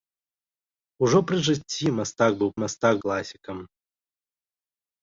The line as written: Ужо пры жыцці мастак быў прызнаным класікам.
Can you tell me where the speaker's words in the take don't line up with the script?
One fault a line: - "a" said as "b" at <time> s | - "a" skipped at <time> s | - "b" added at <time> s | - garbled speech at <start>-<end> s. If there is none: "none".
- "прызнаным" said as "мастак" at 2.6 s